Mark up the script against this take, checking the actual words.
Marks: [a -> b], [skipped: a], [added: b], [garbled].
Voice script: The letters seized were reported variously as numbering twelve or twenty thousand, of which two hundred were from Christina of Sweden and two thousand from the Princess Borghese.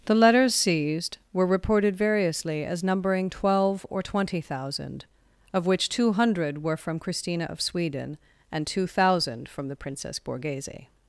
The letters seized were reported variously as numbering twelve or twenty thousand, of which two hundred were from Christina of Sweden and two thousand from the Princess Borghese.